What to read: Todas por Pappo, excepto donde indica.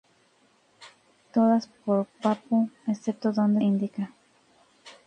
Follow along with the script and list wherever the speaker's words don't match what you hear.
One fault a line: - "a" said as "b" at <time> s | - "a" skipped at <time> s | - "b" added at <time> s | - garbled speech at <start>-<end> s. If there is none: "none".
none